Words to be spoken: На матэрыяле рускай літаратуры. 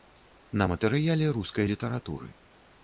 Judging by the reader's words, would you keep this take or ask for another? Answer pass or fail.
pass